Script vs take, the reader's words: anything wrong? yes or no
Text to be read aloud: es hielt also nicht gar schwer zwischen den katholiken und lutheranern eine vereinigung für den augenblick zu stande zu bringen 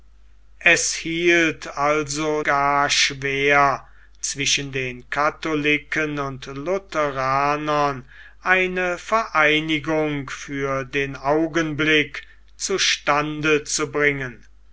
yes